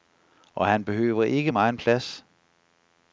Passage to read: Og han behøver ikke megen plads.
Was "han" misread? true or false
false